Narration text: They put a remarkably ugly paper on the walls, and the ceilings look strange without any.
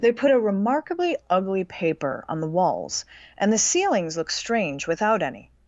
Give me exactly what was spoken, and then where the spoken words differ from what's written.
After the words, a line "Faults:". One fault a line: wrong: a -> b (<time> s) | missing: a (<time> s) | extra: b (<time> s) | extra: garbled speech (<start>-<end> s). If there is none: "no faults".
They put a remarkably ugly paper on the walls, and the ceilings look strange without any.
Faults:
no faults